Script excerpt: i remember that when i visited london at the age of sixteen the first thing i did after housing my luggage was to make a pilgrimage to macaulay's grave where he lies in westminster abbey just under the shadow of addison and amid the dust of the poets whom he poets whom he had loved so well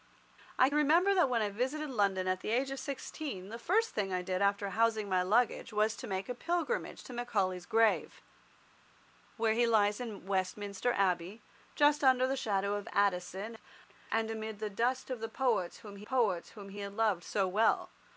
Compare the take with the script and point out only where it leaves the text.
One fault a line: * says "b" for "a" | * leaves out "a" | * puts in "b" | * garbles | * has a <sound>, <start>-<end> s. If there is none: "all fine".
all fine